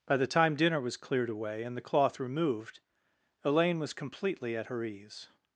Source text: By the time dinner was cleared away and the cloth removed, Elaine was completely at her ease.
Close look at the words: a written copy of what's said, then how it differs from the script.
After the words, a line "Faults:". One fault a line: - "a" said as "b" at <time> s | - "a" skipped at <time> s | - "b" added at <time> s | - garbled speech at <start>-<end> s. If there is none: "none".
By the time dinner was cleared away and the cloth removed, Elaine was completely at her ease.
Faults:
none